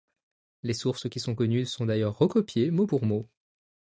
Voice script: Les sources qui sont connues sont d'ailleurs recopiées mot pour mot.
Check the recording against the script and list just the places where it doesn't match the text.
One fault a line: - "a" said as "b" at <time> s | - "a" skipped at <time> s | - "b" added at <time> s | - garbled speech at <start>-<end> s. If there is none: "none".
none